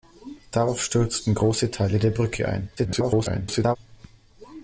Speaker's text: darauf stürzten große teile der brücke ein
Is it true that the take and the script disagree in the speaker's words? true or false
true